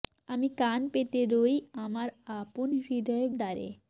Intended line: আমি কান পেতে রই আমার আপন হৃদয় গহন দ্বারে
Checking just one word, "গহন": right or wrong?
wrong